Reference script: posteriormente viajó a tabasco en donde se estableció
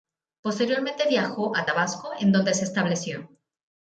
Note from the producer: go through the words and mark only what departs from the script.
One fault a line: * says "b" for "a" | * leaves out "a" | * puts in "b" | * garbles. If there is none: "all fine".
all fine